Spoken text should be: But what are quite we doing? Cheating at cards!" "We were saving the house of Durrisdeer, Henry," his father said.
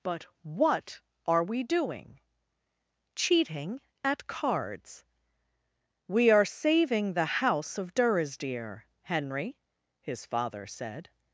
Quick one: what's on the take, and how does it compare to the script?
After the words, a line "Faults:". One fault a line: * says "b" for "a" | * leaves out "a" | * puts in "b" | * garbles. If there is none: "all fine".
But what are we doing? Cheating at cards!" "We are saving the house of Durrisdeer, Henry," his father said.
Faults:
* leaves out "quite"
* says "are" for "were"